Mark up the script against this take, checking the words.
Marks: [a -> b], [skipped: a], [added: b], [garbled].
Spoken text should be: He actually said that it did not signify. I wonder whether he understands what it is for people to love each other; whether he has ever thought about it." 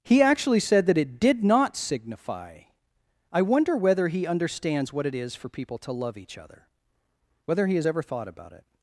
He actually said that it did not signify. I wonder whether he understands what it is for people to love each other; whether he has ever thought about it."